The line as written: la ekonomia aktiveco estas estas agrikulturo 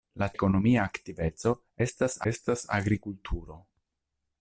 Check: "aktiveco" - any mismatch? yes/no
no